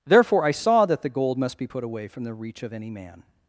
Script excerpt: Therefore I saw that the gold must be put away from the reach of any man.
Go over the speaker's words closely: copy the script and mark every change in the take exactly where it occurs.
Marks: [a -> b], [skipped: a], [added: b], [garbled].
Therefore I saw that the gold must be put away from the reach of any man.